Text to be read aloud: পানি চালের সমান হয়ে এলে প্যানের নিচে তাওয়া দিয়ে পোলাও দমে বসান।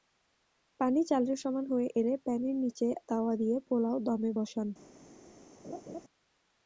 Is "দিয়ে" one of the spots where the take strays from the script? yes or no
no